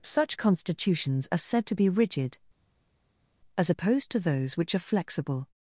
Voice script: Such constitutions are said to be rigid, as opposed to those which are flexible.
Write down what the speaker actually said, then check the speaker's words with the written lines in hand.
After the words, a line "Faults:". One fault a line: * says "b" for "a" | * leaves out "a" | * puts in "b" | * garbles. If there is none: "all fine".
Such constitutions are said to be rigid, as opposed to those which are flexible.
Faults:
all fine